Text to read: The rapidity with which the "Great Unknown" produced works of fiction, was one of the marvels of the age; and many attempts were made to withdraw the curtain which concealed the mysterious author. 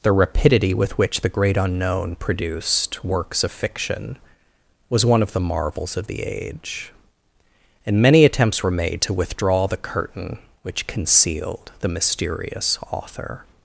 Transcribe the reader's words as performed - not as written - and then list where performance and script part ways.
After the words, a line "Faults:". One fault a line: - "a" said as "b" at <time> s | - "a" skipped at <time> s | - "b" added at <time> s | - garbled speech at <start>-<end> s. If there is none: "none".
The rapidity with which the "Great Unknown" produced works of fiction, was one of the marvels of the age; and many attempts were made to withdraw the curtain which concealed the mysterious author.
Faults:
none